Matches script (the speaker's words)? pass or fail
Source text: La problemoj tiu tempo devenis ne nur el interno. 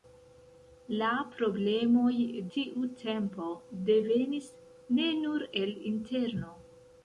pass